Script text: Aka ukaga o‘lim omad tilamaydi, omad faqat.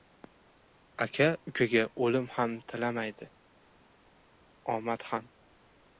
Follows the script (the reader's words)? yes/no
no